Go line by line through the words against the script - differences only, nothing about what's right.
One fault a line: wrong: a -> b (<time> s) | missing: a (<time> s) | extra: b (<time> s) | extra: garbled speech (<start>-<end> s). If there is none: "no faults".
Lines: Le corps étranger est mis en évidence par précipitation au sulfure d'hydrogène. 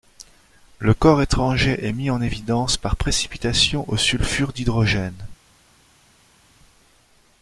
no faults